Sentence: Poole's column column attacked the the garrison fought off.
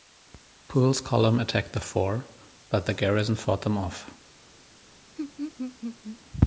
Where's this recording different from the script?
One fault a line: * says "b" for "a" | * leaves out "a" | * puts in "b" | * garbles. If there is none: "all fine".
* leaves out "column"
* puts in "fort but"
* puts in "them"